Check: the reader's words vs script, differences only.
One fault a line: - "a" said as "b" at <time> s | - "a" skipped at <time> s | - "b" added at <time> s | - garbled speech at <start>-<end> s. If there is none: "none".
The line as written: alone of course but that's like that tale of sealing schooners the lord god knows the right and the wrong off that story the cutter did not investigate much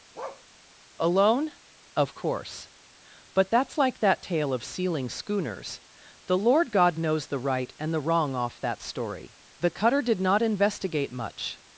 none